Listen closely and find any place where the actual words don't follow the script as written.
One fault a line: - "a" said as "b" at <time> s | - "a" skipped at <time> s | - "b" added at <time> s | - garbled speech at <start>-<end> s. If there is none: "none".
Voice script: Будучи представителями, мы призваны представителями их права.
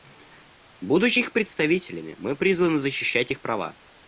- "их" added at 1.2 s
- "представителями" said as "защищать" at 2.8 s